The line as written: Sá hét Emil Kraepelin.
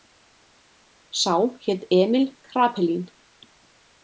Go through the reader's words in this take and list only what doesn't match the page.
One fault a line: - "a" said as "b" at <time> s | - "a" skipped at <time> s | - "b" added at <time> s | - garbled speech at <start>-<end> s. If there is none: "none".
none